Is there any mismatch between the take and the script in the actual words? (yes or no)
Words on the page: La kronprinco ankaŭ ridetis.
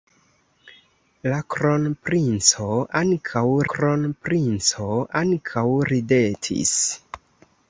yes